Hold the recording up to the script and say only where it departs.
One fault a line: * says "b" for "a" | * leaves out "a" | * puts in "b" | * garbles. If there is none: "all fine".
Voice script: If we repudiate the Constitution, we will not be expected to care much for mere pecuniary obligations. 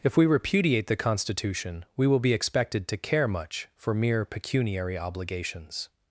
* leaves out "not"